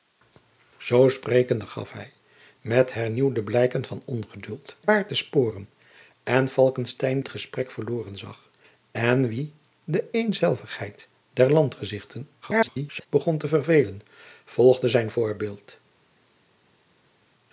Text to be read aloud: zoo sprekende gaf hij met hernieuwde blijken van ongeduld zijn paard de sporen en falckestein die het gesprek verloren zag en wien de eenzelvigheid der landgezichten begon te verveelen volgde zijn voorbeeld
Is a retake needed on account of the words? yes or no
yes